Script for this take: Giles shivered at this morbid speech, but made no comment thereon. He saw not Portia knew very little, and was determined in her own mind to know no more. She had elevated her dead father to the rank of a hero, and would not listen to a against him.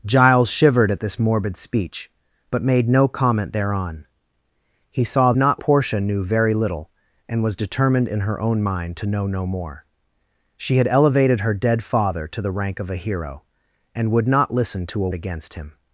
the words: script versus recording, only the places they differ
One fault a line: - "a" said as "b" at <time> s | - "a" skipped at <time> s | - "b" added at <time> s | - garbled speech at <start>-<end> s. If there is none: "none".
none